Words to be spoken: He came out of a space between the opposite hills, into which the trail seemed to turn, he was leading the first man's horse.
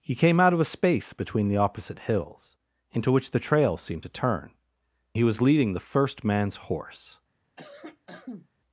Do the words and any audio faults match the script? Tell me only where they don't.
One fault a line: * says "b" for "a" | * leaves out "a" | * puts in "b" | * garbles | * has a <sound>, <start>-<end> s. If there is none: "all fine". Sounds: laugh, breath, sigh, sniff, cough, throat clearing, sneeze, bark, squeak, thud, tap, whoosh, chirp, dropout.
* has a cough, 7.6-8.5 s